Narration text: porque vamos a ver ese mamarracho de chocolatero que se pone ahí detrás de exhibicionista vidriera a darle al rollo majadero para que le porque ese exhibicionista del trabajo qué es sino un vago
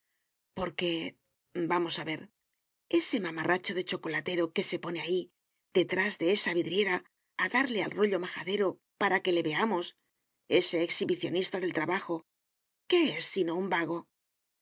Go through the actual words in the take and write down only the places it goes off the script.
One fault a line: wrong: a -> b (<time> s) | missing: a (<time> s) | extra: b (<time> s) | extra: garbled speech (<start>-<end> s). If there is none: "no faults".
wrong: exhibicionista -> esa (6.4 s)
wrong: porque -> veamos (9.5 s)